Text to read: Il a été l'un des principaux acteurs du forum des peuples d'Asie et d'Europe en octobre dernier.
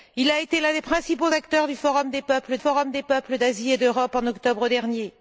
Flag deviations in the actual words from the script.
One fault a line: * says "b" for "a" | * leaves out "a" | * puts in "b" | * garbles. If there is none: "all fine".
* puts in "forum des peuples"